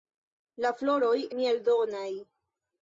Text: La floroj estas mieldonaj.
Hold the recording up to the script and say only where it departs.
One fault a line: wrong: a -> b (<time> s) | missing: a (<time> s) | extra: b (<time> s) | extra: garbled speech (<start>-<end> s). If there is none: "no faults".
missing: estas (1.2 s)